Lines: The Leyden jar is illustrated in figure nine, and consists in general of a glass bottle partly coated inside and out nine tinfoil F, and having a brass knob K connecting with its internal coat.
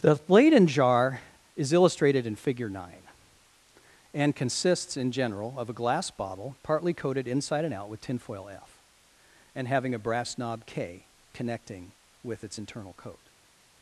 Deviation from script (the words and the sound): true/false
true